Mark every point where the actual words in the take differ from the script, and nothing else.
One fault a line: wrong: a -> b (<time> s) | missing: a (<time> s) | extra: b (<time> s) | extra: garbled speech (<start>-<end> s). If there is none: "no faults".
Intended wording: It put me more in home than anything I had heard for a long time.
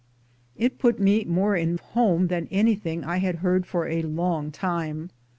no faults